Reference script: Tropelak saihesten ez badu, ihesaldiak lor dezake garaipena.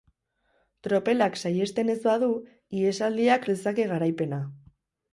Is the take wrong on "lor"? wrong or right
wrong